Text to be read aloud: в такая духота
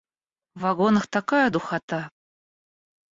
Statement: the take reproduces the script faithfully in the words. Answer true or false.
false